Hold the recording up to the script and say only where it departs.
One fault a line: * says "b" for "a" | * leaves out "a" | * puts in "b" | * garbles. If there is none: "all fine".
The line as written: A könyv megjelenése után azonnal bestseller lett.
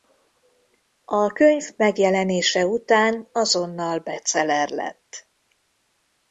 all fine